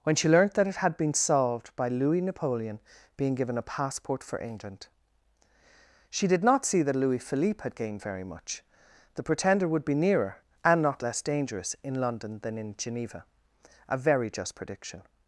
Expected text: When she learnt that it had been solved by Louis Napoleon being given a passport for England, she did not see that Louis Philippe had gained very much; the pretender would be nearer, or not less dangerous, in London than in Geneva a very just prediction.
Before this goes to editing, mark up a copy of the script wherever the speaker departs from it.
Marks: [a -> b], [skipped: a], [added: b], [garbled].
When she learnt that it had been solved by Louis Napoleon being given a passport for England, she did not see that Louis Philippe had gained very much; the pretender would be nearer, [or -> and] not less dangerous, in London than in Geneva a very just prediction.